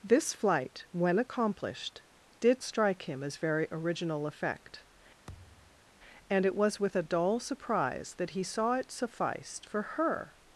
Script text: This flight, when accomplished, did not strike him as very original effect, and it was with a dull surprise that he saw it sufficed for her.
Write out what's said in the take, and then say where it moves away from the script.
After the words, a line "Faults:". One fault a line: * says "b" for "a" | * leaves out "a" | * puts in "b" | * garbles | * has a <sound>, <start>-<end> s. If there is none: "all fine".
This flight, when accomplished, did strike him as very original effect, and it was with a dull surprise that he saw it sufficed for her.
Faults:
* leaves out "not"
* has a thud, 5.3-5.9 s